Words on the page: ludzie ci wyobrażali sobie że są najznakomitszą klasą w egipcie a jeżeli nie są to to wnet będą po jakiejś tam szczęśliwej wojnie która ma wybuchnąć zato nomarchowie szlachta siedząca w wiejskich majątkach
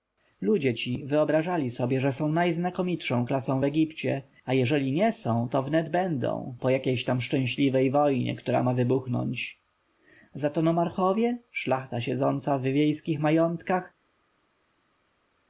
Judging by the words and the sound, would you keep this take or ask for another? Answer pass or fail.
fail